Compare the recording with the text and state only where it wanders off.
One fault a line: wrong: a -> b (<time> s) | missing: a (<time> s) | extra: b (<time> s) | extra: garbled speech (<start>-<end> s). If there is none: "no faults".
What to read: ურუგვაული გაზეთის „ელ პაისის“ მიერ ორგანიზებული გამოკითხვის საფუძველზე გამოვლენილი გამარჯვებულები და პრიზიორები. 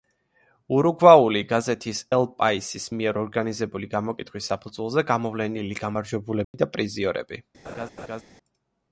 no faults